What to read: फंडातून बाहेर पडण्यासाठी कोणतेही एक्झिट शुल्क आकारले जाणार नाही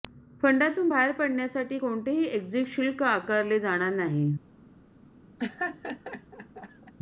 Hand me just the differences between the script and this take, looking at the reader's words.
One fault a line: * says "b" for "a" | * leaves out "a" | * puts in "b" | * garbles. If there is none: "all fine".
all fine